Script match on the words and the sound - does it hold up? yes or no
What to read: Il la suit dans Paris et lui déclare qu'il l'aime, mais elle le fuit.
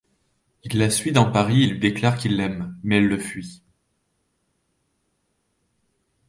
yes